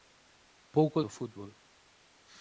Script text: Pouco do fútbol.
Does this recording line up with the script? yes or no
yes